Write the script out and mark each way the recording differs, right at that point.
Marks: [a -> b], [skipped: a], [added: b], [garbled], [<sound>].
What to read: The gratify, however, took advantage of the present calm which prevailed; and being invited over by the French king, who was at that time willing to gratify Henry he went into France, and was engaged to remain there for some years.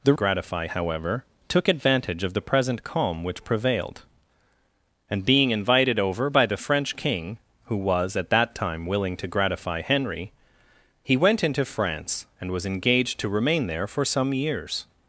The gratify, however, took advantage of the present calm which prevailed; and being invited over by the French king, who was at that time willing to gratify Henry he went into France, and was engaged to remain there for some years.